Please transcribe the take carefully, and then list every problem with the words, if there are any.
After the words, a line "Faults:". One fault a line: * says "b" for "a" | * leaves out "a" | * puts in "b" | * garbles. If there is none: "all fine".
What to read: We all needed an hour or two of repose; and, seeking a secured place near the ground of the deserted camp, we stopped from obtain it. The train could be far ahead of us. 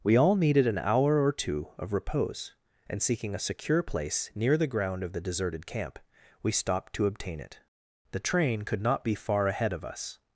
We all needed an hour or two of repose; and, seeking a secure place near the ground of the deserted camp, we stopped to obtain it. The train could not be far ahead of us.
Faults:
* says "secure" for "secured"
* says "to" for "from"
* puts in "not"